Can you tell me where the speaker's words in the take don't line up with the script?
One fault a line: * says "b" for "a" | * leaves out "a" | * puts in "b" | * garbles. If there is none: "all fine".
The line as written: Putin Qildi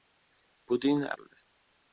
all fine